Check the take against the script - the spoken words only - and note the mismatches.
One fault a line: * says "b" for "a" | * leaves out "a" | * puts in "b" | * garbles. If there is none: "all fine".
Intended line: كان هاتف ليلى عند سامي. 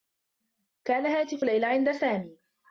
all fine